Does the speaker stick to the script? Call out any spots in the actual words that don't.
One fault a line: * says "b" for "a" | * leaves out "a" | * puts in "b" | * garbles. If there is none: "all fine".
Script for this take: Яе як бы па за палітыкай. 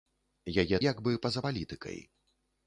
all fine